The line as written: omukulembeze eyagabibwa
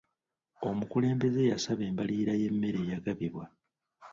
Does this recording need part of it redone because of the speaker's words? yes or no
yes